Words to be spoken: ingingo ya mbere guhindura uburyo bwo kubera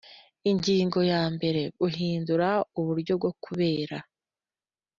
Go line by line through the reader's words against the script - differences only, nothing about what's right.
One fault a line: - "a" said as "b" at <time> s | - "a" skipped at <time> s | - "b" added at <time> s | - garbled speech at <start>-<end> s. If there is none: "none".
none